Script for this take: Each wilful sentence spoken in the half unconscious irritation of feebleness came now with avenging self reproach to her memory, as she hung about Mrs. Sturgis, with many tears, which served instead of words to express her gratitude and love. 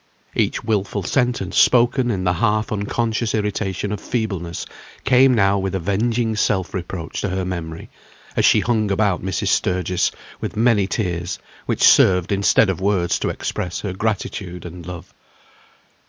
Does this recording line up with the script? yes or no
yes